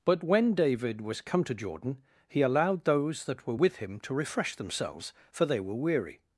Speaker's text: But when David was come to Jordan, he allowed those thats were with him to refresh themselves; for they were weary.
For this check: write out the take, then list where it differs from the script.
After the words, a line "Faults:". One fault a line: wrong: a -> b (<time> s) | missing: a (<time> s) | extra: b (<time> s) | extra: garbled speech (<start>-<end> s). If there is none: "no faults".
But when David was come to Jordan, he allowed those that were with him to refresh themselves; for they were weary.
Faults:
wrong: thats -> that (3.2 s)